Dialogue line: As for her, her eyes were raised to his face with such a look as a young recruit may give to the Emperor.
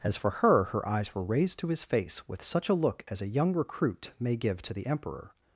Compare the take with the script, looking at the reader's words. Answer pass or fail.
pass